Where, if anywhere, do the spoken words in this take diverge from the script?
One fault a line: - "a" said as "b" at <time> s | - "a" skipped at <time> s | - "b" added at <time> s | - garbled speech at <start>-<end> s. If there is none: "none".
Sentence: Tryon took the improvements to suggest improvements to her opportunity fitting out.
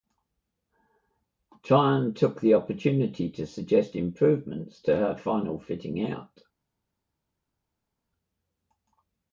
- "improvements" said as "opportunity" at 2.5 s
- "opportunity" said as "final" at 5.2 s